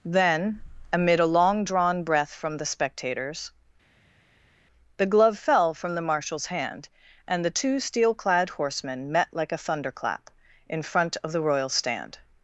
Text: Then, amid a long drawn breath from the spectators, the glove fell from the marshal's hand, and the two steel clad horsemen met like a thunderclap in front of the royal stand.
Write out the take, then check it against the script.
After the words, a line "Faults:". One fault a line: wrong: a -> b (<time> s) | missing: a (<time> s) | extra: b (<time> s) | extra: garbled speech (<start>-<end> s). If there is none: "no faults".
Then, amid a long drawn breath from the spectators, the glove fell from the marshal's hand, and the two steel clad horsemen met like a thunderclap in front of the royal stand.
Faults:
no faults